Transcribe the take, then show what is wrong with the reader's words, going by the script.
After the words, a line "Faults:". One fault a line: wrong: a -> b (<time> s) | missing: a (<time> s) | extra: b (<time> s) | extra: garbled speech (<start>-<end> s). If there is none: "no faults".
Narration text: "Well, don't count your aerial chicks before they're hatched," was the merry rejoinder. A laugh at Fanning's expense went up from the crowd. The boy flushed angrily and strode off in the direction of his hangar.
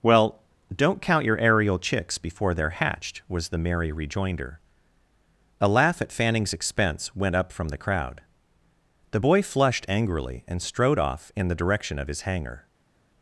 "Well, don't count your aerial chicks before they're hatched," was the merry rejoinder. A laugh at Fanning's expense went up from the crowd. The boy flushed angrily and strode off in the direction of his hangar.
Faults:
no faults